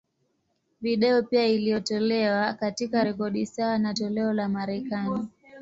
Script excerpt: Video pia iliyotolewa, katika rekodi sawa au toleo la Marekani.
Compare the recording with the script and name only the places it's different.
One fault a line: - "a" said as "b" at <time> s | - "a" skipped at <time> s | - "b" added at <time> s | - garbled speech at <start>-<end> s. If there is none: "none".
- "au" said as "na" at 3.8 s